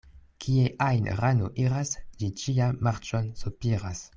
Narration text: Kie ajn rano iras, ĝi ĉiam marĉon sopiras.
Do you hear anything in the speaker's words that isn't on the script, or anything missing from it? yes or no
no